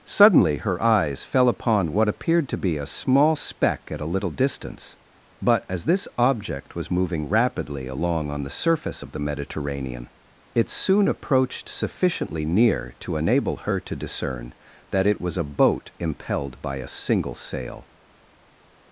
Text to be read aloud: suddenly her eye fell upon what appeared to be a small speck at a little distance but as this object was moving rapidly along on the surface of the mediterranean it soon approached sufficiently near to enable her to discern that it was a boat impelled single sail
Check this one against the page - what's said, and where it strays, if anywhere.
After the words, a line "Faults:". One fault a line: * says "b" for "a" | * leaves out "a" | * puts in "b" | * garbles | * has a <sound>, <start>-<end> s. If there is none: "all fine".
suddenly her eyes fell upon what appeared to be a small speck at a little distance but as this object was moving rapidly along on the surface of the mediterranean it soon approached sufficiently near to enable her to discern that it was a boat impelled by a single sail
Faults:
* says "eyes" for "eye"
* puts in "by a"